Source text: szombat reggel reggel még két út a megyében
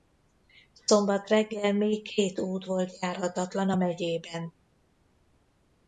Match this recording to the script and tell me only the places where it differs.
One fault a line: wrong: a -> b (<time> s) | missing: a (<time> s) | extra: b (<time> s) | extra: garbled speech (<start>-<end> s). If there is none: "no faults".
missing: reggel (1.7 s)
extra: volt járhatatlan (2.6 s)